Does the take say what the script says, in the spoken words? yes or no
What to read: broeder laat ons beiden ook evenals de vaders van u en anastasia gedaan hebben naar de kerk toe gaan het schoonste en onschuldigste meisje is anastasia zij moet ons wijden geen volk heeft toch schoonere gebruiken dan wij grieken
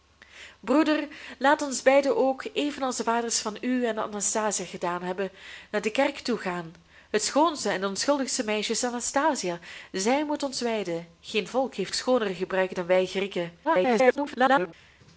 no